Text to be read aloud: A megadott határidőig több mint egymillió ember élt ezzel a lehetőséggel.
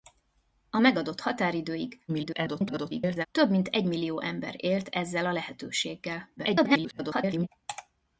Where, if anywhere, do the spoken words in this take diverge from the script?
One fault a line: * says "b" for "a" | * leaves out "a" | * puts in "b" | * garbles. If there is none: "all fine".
* garbles
* garbles